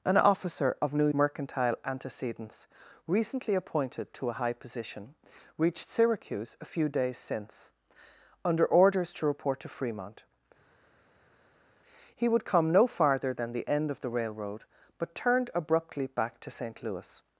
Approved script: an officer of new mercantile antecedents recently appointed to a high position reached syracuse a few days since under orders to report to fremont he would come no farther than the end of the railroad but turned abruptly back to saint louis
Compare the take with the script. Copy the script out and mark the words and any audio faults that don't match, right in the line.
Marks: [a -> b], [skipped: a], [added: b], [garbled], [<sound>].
an officer of new mercantile antecedents recently appointed to a high position reached syracuse a few days since under orders to report to fremont he would come no farther than the end of the railroad but turned abruptly back to saint louis